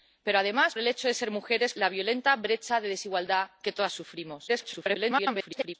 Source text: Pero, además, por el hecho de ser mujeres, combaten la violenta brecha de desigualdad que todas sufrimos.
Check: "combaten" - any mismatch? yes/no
yes